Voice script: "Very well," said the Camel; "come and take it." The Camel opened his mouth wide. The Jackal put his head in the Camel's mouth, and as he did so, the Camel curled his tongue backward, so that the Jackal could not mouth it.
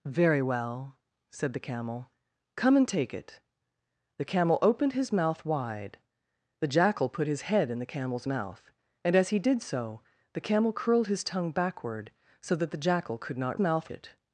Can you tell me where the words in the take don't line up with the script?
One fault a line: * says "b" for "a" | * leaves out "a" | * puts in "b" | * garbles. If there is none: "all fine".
all fine